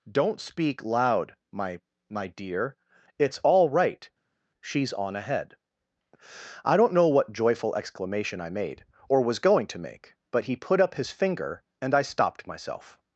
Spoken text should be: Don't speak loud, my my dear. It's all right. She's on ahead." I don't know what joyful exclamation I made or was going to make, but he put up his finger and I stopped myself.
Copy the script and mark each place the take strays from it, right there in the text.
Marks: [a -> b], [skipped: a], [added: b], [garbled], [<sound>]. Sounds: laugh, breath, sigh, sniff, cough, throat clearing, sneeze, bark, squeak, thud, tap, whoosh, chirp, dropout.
Don't speak loud, my my dear. It's all right. She's on ahead." I don't know what joyful exclamation I made or was going to make, but he put up his finger and I stopped myself.